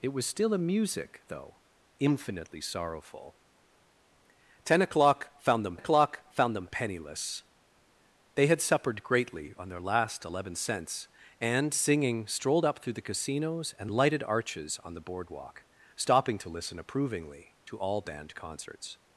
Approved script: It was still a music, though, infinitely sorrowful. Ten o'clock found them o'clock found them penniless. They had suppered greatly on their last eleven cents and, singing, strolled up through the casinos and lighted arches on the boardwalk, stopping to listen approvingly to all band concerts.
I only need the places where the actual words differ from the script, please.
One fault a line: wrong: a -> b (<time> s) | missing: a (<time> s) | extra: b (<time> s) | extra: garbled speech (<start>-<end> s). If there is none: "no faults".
no faults